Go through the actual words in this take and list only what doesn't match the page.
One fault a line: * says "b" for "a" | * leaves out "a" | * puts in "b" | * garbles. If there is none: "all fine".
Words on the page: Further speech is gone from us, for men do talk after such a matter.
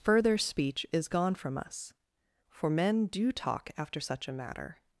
all fine